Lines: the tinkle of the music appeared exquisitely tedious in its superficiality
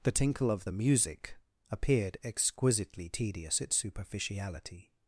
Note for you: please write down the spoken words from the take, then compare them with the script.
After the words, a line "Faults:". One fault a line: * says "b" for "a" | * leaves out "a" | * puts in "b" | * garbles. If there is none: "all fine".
the tinkle of the music appeared exquisitely tedious its superficiality
Faults:
* leaves out "in"